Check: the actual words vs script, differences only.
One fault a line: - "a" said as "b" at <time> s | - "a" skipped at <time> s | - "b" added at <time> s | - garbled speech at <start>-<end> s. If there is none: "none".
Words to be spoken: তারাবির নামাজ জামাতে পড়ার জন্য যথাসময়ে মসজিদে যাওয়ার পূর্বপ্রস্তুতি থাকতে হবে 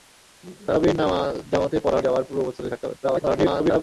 - "জন্য যথাসময়ে মসজিদে" skipped at 2.0 s
- garbled speech at 3.0-3.8 s